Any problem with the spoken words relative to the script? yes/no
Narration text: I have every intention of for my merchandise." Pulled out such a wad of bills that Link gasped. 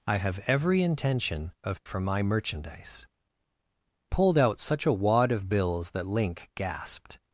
no